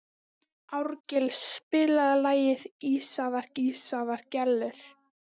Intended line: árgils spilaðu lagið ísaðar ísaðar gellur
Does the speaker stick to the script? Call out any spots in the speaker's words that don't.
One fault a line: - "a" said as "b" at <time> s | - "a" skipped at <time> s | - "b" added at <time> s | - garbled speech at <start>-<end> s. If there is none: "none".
none